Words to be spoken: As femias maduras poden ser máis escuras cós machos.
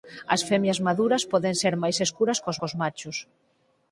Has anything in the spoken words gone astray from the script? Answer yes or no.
yes